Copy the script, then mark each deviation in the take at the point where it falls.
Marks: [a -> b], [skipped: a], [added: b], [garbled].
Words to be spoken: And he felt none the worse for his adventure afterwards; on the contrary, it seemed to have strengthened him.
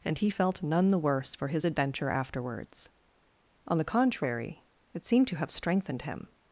And he felt none the worse for his adventure afterwards; on the contrary, it seemed to have strengthened him.